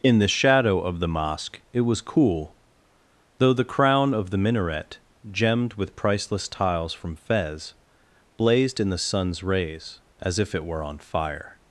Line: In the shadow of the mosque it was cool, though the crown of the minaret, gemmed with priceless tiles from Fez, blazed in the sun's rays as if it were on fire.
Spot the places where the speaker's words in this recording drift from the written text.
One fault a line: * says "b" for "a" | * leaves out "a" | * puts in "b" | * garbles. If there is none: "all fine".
all fine